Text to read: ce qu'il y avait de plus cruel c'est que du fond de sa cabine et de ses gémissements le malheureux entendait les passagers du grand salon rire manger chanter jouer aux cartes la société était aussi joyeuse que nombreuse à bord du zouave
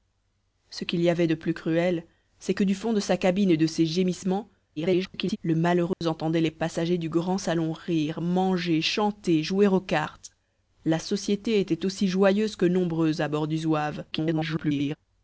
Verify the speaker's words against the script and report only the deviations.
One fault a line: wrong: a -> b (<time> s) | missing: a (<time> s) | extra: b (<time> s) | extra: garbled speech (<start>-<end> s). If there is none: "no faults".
extra: garbled speech (4.8-5.4 s)
extra: garbled speech (14.1-15.0 s)